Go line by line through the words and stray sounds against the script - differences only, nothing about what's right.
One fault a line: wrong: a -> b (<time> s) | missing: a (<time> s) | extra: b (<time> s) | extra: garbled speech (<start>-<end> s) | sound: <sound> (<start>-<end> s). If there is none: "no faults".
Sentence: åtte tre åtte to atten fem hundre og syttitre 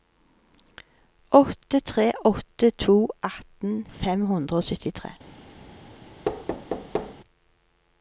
sound: thud (6.2-7.2 s)